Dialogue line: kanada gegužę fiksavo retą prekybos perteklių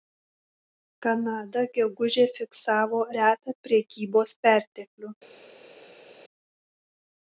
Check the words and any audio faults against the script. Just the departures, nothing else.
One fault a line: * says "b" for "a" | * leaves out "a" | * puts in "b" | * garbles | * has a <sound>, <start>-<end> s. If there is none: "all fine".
all fine